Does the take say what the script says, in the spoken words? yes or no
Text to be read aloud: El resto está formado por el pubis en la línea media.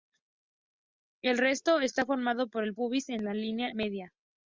yes